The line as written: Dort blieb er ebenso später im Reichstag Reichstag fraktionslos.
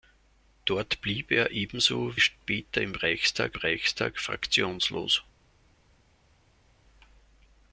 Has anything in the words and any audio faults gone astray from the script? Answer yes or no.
no